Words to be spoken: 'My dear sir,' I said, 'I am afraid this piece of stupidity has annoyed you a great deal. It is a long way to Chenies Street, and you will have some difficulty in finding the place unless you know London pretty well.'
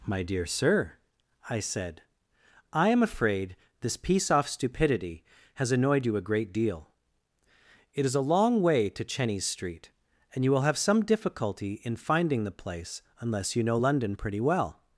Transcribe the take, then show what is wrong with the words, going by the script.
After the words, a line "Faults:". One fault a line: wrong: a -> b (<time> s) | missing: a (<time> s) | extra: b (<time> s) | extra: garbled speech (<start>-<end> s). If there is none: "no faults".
'My dear sir,' I said, 'I am afraid this piece off stupidity has annoyed you a great deal. It is a long way to Chenies Street, and you will have some difficulty in finding the place unless you know London pretty well.'
Faults:
wrong: of -> off (4.3 s)